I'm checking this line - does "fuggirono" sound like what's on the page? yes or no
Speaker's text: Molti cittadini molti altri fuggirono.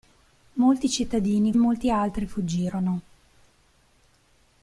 yes